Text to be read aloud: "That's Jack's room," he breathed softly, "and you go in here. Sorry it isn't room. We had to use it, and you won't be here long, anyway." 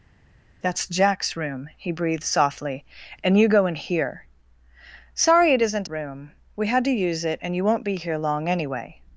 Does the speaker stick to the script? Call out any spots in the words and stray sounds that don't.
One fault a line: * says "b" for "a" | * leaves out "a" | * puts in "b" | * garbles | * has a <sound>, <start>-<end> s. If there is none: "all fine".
all fine